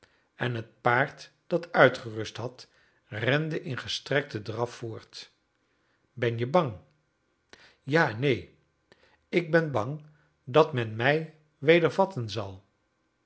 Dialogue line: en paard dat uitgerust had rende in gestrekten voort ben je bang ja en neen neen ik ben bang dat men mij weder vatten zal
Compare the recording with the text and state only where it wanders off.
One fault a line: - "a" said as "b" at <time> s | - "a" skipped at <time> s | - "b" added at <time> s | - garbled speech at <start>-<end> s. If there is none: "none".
- "het" added at 0.6 s
- "draf" added at 4.4 s
- "neen" skipped at 8.5 s